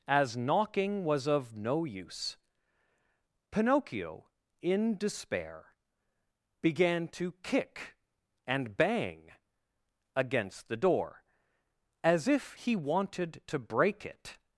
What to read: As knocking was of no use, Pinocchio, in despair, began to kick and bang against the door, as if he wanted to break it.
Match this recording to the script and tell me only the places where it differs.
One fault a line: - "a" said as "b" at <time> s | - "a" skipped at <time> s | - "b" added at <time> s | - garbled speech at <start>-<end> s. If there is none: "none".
none